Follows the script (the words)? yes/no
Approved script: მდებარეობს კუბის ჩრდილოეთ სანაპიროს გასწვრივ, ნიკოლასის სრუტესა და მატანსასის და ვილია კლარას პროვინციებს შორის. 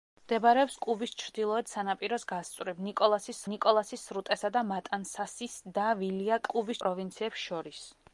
no